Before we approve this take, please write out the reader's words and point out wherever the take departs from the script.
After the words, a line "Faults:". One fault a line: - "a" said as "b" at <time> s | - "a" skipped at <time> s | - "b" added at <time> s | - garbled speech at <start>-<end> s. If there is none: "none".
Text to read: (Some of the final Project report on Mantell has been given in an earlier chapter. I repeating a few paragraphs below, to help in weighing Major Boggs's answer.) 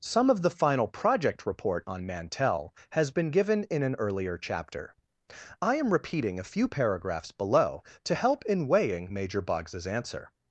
(Some of the final Project report on Mantell has been given in an earlier chapter. I am repeating a few paragraphs below, to help in weighing Major Boggs's answer.)
Faults:
- "am" added at 5.7 s